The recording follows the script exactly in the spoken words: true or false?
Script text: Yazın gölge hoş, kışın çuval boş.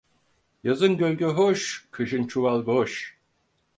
true